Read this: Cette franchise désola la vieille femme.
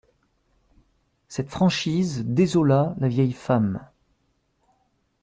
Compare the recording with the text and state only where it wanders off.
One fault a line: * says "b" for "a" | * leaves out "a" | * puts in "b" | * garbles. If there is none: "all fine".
all fine